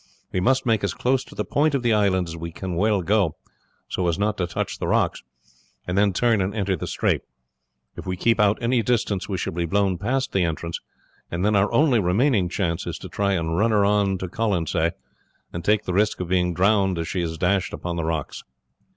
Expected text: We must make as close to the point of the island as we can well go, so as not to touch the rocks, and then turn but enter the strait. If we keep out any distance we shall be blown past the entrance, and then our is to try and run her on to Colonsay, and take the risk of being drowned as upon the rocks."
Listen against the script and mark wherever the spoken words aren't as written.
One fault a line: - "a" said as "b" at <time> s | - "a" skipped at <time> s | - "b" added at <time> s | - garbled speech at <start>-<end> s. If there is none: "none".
- "but" said as "and" at 6.4 s
- "only remaining chance" added at 11.7 s
- "she is dashed" added at 17.1 s